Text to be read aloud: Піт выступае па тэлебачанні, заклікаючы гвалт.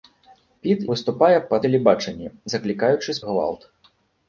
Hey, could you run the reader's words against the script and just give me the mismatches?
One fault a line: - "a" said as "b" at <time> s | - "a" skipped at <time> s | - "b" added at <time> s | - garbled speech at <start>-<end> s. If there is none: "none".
none